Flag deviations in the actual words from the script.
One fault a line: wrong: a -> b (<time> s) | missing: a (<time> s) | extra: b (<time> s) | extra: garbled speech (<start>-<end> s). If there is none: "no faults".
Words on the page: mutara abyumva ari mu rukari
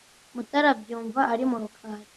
no faults